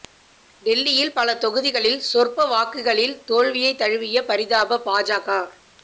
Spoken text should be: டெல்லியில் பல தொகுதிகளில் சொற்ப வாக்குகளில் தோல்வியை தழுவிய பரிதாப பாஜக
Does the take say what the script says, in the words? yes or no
yes